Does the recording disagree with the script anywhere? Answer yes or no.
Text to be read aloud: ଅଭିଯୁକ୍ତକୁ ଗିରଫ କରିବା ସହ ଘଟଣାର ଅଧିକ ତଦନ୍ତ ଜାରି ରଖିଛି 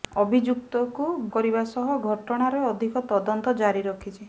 yes